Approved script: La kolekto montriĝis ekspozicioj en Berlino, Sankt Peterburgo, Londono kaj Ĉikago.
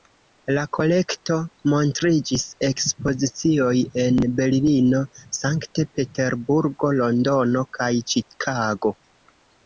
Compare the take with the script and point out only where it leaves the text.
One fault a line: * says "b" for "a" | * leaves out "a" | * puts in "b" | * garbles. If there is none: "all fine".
all fine